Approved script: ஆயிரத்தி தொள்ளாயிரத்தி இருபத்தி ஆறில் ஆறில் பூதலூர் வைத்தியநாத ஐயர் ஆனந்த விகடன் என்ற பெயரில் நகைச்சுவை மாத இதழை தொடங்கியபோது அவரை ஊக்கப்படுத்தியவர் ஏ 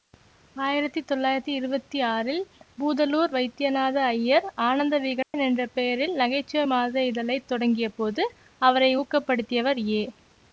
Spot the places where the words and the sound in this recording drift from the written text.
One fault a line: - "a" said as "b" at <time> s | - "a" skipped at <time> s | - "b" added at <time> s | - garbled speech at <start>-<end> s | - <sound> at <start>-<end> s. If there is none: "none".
- "ஆறில்" skipped at 2.4 s
- dropout at 5.2-5.3 s